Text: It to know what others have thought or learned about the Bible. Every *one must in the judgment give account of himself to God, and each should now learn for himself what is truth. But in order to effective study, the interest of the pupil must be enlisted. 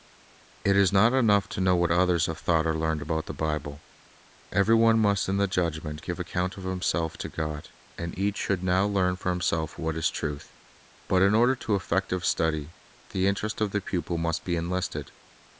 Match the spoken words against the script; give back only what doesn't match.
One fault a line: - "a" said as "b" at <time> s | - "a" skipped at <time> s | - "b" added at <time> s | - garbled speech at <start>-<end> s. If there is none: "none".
- "is not enough" added at 0.8 s